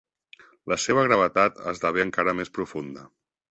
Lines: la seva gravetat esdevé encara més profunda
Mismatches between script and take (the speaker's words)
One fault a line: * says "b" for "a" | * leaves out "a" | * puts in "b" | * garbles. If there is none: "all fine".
all fine